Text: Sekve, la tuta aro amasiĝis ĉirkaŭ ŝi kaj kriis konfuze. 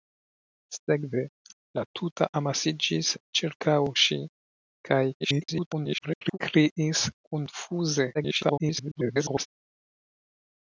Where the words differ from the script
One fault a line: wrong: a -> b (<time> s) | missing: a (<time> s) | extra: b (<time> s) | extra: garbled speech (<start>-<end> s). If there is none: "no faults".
missing: aro (2.3 s)
extra: garbled speech (5.2-6.4 s)
extra: garbled speech (8.1-9.5 s)